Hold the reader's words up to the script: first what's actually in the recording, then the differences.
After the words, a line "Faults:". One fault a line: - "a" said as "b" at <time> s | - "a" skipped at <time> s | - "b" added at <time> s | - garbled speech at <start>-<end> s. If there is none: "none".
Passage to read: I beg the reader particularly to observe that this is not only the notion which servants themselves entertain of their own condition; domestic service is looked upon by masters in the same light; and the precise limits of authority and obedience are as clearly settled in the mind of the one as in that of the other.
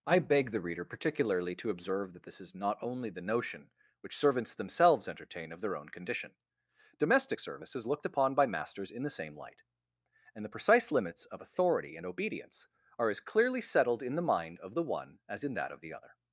I beg the reader particularly to observe that this is not only the notion which servants themselves entertain of their own condition; domestic service is looked upon by masters in the same light; and the precise limits of authority and obedience are as clearly settled in the mind of the one as in that of the other.
Faults:
none